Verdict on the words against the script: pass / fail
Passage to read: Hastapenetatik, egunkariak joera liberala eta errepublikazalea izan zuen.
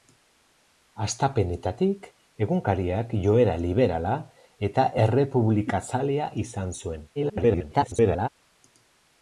fail